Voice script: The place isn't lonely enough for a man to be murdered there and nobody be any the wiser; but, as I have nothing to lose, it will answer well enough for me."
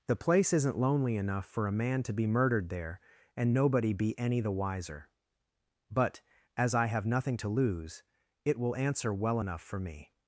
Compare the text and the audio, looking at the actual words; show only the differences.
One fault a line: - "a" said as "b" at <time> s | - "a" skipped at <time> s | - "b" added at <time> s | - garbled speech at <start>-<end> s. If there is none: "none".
none